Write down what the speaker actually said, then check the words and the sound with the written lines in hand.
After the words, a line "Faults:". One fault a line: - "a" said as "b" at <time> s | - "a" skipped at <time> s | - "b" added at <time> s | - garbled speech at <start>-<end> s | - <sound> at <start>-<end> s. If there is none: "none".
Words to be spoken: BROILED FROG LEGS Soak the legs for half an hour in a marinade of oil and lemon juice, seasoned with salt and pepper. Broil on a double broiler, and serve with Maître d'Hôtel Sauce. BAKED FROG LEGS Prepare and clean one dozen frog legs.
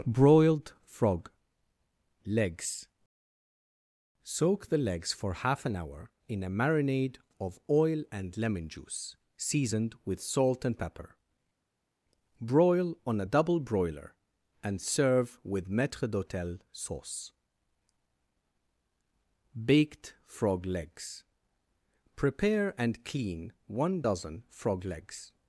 BROILED FROG LEGS Soak the legs for half an hour in a marinade of oil and lemon juice, seasoned with salt and pepper. Broil on a double broiler, and serve with Maître d'Hôtel Sauce. BAKED FROG LEGS Prepare and clean one dozen frog legs.
Faults:
none